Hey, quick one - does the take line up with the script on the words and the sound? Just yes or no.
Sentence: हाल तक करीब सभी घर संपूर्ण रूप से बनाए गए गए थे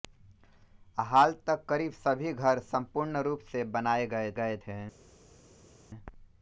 yes